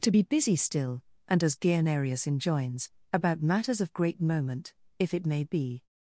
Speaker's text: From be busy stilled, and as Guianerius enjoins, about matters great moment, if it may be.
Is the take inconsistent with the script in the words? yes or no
yes